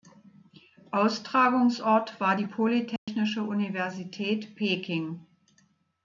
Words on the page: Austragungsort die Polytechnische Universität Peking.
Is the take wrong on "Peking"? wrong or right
right